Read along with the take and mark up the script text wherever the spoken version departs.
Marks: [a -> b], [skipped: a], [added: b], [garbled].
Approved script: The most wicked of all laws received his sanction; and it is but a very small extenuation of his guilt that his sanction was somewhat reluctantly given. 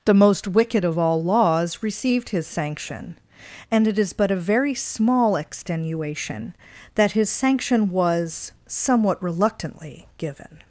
The most wicked of all laws received his sanction; and it is but a very small extenuation [skipped: of his guilt] that his sanction was somewhat reluctantly given.